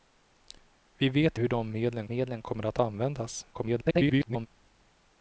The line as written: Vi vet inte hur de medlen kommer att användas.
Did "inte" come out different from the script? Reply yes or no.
yes